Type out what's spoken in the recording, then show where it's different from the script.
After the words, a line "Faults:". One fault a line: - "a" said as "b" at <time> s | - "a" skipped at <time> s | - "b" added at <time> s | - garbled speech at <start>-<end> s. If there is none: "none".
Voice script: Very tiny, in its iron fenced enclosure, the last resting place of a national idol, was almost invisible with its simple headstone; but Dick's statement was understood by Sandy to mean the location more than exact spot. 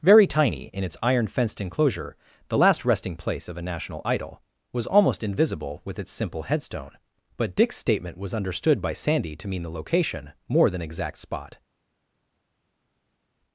Very tiny, in its iron fenced enclosure, the last resting place of a national idol, was almost invisible with its simple headstone; but Dick's statement was understood by Sandy to mean the location more than exact spot.
Faults:
none